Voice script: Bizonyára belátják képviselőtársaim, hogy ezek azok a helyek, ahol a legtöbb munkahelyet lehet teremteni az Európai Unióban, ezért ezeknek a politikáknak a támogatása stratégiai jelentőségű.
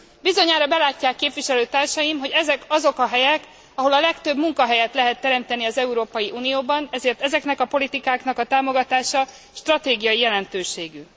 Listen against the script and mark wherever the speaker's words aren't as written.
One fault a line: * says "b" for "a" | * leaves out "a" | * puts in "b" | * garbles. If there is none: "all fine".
all fine